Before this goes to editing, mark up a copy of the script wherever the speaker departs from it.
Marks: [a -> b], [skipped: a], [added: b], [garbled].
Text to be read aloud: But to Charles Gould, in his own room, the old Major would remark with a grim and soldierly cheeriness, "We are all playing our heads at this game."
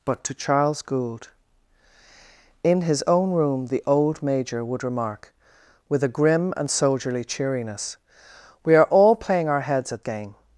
But to Charles Gould, in his own room, the old Major would remark with a grim and soldierly cheeriness, "We are all playing our heads at [skipped: this] game."